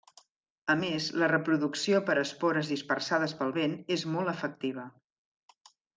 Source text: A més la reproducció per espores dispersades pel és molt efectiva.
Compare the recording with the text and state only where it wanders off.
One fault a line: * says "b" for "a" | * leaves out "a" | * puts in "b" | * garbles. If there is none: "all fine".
* puts in "vent"